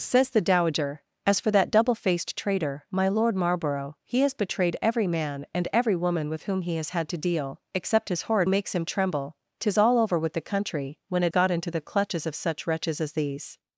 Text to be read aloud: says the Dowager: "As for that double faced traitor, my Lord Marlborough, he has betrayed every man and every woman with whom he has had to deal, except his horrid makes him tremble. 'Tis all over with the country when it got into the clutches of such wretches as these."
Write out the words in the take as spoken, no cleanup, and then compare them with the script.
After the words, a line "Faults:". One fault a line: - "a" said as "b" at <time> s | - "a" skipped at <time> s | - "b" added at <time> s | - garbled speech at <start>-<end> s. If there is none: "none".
says the Dowager: "As for that double faced traitor, my Lord Marlborough, he has betrayed every man and every woman with whom he has had to deal, except his horrid makes him tremble. 'Tis all over with the country when it got into the clutches of such wretches as these."
Faults:
none